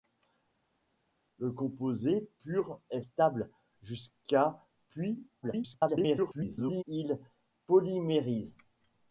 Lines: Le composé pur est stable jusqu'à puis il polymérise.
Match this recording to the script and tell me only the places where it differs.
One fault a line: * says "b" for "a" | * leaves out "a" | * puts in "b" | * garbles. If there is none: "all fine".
* garbles